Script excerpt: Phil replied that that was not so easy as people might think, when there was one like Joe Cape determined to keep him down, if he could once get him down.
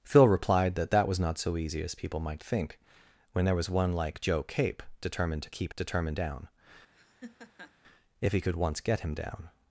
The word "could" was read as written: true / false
true